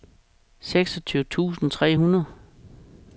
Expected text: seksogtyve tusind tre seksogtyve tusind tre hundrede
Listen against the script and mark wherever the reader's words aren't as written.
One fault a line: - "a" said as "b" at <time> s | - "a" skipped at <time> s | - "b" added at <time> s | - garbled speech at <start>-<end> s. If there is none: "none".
- "seksogtyve tusind tre" skipped at 2.0 s